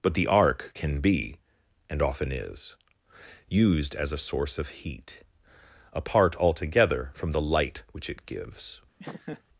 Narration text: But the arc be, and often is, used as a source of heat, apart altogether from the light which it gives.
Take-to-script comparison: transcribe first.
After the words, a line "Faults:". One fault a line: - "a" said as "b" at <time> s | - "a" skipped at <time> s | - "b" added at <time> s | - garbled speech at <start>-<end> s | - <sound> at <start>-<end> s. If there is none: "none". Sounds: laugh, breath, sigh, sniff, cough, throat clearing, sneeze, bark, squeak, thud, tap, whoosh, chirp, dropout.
But the arc can be, and often is, used as a source of heat, apart altogether from the light which it gives.
Faults:
- "can" added at 0.7 s
- laugh at 9.0-9.4 s